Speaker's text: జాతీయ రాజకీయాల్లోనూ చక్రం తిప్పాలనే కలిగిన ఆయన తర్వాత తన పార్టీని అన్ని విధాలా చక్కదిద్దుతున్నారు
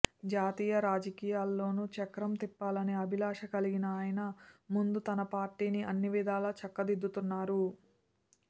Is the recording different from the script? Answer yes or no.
yes